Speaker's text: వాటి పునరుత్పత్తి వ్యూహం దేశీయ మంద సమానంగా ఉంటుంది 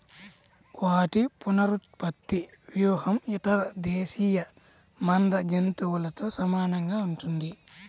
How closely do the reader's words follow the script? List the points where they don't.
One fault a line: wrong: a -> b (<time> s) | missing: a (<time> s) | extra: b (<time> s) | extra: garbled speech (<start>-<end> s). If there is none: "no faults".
extra: ఇతర (3.3 s)
extra: జంతువులతో (5.5 s)